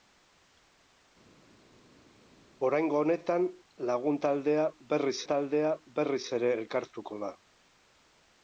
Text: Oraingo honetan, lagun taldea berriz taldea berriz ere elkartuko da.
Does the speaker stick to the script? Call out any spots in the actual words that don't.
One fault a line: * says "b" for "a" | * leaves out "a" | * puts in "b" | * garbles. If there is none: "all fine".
all fine